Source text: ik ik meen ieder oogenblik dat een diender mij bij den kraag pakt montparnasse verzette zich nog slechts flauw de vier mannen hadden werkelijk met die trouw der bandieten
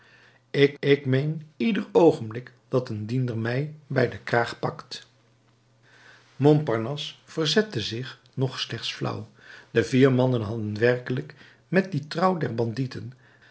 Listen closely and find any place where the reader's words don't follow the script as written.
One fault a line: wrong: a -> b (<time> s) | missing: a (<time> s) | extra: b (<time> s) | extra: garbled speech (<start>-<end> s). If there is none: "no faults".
no faults